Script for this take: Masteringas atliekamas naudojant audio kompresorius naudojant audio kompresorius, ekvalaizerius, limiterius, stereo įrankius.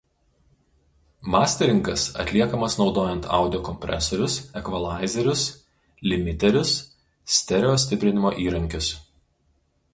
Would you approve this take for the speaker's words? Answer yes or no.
no